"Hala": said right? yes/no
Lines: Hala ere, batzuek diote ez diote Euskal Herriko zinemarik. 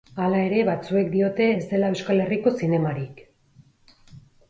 yes